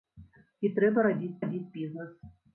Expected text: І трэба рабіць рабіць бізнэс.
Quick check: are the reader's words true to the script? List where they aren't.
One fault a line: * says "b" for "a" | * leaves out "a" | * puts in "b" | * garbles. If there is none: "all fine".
all fine